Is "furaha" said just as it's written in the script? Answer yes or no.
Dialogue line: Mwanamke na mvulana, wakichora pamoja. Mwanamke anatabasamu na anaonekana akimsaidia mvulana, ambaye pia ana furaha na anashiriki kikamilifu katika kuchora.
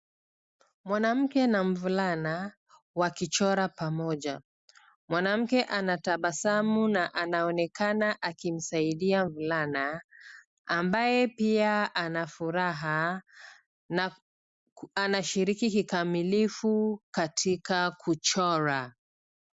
yes